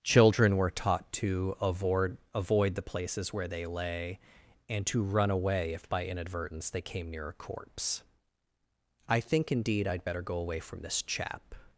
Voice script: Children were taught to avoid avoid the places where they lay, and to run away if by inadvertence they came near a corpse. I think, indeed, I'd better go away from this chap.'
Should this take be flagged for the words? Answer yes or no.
no